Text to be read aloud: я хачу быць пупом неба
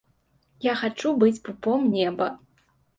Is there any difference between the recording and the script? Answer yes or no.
no